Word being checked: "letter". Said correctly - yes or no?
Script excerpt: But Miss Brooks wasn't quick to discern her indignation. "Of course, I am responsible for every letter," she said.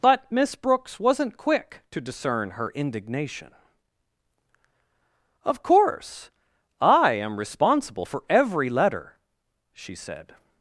yes